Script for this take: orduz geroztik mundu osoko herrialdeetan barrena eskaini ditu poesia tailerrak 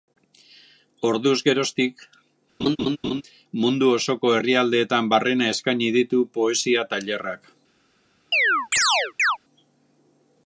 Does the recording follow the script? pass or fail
pass